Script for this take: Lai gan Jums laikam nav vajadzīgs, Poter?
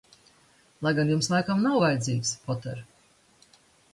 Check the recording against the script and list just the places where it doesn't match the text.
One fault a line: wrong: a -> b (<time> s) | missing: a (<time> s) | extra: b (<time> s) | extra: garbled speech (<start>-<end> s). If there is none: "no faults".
no faults